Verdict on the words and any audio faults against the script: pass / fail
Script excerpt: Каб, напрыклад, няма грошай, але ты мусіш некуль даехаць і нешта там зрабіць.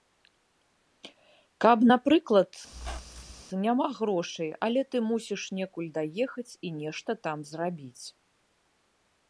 fail